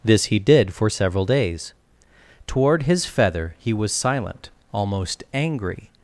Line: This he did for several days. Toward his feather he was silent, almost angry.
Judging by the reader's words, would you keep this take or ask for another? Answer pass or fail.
pass